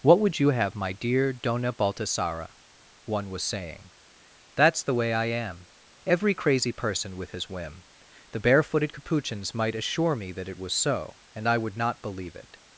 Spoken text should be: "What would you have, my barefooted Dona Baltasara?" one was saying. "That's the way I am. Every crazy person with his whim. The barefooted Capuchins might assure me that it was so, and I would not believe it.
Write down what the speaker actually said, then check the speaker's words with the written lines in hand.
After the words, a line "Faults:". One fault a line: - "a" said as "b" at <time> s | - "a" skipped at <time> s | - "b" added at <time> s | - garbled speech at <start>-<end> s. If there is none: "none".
"What would you have, my dear Dona Baltasara?" one was saying. "That's the way I am. Every crazy person with his whim. The barefooted Capuchins might assure me that it was so, and I would not believe it.
Faults:
- "barefooted" said as "dear" at 0.9 s